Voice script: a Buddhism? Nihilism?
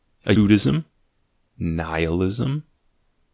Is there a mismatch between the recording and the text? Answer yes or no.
no